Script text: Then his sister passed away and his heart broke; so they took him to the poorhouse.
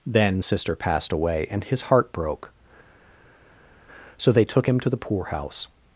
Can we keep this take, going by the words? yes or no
no